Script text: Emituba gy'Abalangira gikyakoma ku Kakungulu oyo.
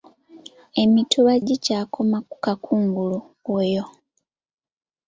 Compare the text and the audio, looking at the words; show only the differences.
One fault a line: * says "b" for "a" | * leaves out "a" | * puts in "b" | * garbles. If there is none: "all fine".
* leaves out "gy'Abalangira"